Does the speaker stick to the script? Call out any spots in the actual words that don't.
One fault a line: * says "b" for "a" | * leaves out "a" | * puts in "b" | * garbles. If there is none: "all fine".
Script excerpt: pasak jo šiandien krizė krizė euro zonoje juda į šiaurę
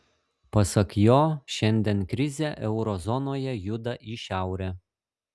* leaves out "krizė"